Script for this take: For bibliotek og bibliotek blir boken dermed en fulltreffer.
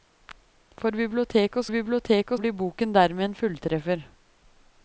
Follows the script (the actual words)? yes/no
yes